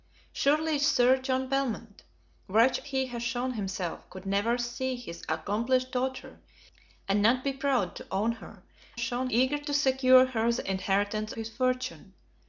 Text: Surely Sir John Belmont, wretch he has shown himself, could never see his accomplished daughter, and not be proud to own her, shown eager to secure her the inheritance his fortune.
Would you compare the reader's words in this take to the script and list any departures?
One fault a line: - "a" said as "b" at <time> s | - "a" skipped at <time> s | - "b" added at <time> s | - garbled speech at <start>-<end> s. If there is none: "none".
none